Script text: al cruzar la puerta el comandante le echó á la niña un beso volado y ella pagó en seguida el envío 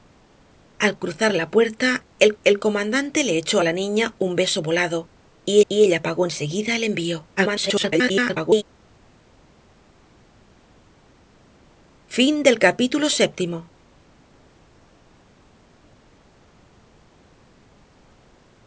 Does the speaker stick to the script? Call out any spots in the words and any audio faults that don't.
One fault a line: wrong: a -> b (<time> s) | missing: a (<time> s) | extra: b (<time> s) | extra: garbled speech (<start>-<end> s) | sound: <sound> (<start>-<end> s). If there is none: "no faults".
extra: el (2.4 s)
extra: y (5.7 s)
extra: garbled speech (7.4-8.6 s)